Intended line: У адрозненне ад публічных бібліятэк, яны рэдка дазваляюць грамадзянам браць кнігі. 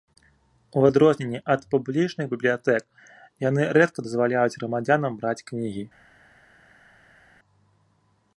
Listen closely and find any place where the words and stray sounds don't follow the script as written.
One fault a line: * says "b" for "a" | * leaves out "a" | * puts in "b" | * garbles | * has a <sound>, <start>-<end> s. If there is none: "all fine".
all fine